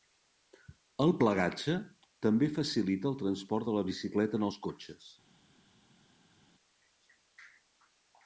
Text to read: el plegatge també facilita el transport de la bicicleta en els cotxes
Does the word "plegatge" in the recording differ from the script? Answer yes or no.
no